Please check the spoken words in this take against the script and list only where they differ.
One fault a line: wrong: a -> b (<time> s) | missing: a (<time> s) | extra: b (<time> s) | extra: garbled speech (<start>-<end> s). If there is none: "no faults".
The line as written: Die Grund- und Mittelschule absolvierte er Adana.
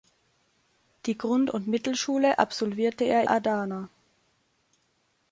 no faults